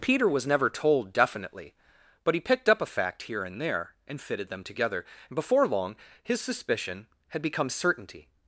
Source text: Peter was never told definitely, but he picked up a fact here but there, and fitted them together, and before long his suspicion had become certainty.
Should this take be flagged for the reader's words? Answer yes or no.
yes